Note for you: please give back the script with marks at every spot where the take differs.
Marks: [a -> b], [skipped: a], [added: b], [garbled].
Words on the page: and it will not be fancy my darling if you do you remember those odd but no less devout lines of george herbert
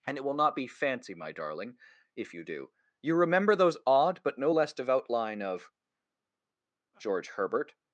and it will not be fancy my darling if you do you remember those odd but no less devout [lines -> line] of george herbert